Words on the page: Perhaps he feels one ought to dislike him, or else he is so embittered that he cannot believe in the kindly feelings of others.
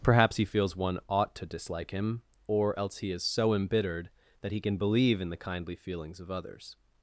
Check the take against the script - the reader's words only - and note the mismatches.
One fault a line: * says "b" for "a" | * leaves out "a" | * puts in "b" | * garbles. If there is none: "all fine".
* says "can" for "cannot"